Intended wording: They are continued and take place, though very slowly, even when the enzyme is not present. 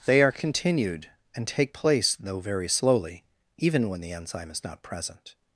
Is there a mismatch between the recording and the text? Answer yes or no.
no